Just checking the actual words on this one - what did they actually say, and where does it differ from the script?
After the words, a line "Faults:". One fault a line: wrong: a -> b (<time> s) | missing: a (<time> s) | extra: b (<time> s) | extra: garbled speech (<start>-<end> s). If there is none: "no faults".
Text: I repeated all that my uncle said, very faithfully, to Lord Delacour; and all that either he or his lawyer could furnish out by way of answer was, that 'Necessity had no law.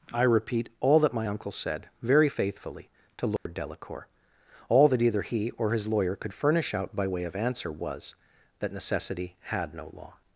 I repeat all that my uncle said, very faithfully, to Lord Delacour; all that either he or his lawyer could furnish out by way of answer was, that 'Necessity had no law.
Faults:
wrong: repeated -> repeat (0.2 s)
missing: and (4.1 s)